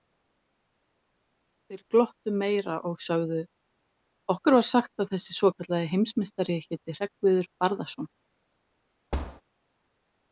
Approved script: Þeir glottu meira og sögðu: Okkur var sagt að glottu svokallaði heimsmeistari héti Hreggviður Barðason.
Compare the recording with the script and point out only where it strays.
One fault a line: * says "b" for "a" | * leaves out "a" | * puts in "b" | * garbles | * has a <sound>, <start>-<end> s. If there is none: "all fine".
* says "þessi" for "glottu"
* has a thud, 9.1-9.4 s